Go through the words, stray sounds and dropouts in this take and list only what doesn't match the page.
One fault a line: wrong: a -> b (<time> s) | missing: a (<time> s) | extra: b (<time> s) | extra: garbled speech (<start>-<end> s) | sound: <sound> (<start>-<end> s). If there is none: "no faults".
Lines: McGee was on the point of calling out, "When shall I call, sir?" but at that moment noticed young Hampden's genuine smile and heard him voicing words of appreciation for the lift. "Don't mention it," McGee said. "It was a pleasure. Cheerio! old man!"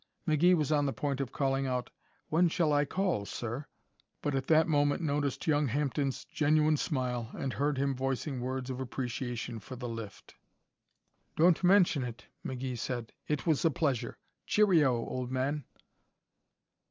no faults